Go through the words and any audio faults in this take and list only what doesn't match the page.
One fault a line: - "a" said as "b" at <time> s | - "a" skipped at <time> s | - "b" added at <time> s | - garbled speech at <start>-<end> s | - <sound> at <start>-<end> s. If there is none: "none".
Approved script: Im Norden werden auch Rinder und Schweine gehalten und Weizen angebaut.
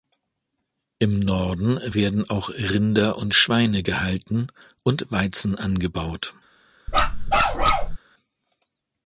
- bark at 6.9-8.0 s